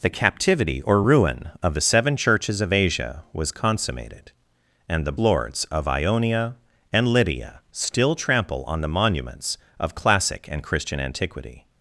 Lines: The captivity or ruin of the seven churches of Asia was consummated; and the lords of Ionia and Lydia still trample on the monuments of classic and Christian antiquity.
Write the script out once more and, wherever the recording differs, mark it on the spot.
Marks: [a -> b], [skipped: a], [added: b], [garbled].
The captivity or ruin of the seven churches of Asia was consummated; and the lords of Ionia and Lydia still trample on the monuments of classic and Christian antiquity.